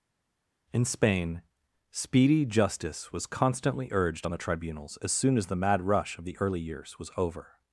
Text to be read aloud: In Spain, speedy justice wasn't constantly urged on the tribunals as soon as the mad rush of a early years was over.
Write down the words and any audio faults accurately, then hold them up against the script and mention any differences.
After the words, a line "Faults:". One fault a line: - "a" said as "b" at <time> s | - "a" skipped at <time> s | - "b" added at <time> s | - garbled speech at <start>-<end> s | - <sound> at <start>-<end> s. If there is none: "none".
In Spain, speedy justice was constantly urged on the tribunals as soon as the mad rush of the early years was over.
Faults:
- "wasn't" said as "was" at 3.1 s
- "a" said as "the" at 6.2 s